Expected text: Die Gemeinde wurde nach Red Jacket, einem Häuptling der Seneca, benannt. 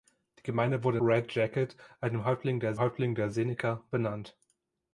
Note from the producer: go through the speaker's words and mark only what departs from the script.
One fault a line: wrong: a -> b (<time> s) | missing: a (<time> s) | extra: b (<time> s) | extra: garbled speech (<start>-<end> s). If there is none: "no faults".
missing: nach (1.0 s)
extra: Häuptling der (2.8 s)